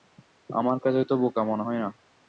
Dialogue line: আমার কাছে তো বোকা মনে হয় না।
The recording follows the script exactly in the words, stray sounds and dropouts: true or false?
true